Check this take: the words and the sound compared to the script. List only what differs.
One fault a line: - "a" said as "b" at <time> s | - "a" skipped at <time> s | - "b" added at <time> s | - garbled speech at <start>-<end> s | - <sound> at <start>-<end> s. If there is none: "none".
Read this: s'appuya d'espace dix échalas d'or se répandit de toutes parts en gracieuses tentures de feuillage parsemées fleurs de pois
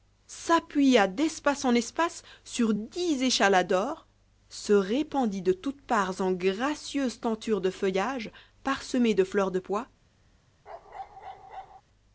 - "en espace sur" added at 1.6 s
- "de" added at 9.1 s
- bark at 10.7-11.8 s